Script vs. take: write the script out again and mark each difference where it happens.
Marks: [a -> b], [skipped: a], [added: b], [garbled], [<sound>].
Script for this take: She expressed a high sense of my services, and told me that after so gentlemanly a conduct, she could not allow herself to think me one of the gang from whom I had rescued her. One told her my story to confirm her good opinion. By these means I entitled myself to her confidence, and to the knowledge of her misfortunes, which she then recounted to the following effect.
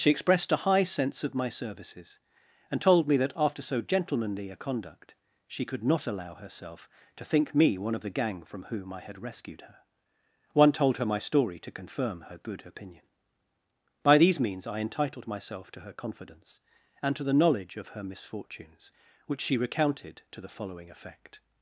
She expressed a high sense of my services, and told me that after so gentlemanly a conduct, she could not allow herself to think me one of the gang from whom I had rescued her. One told her my story to confirm her good opinion. By these means I entitled myself to her confidence, and to the knowledge of her misfortunes, which she [skipped: then] recounted to the following effect.